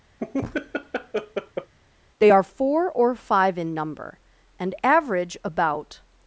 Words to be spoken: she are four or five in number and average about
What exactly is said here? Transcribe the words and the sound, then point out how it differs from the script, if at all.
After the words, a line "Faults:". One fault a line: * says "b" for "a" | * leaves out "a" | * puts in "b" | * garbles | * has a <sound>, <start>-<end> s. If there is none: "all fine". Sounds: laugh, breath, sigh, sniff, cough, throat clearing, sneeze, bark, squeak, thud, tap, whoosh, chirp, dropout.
they are four or five in number and average about
Faults:
* has a laugh, 0.2-1.7 s
* says "they" for "she"